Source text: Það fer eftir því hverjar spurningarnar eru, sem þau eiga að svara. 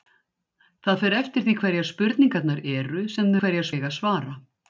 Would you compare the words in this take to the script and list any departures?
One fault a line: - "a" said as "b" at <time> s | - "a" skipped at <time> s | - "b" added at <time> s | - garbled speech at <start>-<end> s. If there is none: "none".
- "þau" said as "hverjar" at 3.4 s